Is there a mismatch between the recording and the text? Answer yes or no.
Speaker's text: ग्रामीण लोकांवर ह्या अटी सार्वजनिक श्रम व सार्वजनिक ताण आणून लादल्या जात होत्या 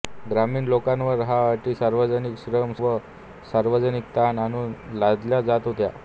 no